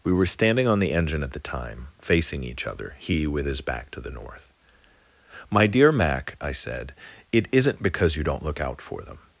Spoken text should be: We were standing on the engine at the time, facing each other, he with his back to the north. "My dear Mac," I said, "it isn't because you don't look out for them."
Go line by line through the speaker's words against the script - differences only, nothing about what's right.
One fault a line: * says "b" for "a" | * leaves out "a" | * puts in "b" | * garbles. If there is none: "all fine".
all fine